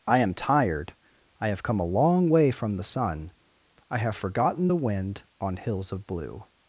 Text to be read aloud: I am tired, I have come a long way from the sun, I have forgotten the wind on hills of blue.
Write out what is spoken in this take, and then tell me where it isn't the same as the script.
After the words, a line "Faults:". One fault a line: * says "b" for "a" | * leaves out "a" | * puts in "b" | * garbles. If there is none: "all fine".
I am tired, I have come a long way from the sun, I have forgotten the wind on hills of blue.
Faults:
all fine